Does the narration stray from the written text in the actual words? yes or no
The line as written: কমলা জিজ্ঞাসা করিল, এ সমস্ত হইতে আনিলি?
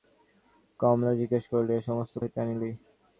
no